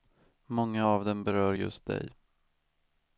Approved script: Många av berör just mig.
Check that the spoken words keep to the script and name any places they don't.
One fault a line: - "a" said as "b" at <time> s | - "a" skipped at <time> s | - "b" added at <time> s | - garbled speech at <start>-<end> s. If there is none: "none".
- "dem" added at 1.0 s
- "mig" said as "dig" at 1.8 s